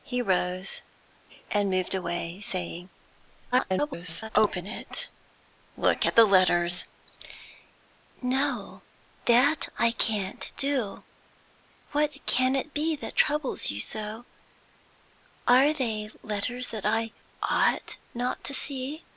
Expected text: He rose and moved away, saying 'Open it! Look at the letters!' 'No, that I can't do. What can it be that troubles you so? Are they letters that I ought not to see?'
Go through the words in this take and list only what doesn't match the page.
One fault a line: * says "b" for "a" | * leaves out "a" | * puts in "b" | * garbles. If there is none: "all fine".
* garbles